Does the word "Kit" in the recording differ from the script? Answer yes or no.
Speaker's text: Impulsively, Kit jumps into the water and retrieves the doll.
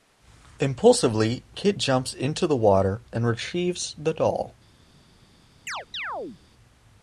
no